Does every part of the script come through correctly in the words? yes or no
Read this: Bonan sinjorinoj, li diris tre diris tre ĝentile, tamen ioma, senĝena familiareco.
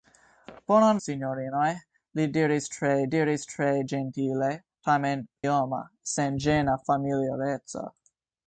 yes